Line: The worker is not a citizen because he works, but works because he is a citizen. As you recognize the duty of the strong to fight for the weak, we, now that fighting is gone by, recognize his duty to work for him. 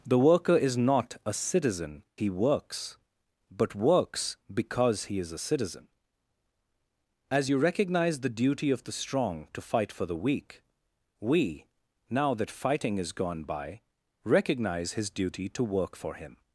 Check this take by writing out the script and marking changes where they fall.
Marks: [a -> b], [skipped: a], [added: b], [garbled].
The worker is not a citizen [skipped: because] he works, but works because he is a citizen. As you recognize the duty of the strong to fight for the weak, we, now that fighting is gone by, recognize his duty to work for him.